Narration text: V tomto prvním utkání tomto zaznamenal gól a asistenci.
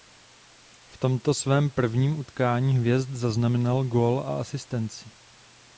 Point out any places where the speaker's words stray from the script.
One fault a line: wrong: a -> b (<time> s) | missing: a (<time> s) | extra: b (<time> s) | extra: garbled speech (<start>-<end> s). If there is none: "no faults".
extra: svém (1.3 s)
wrong: tomto -> hvězd (2.8 s)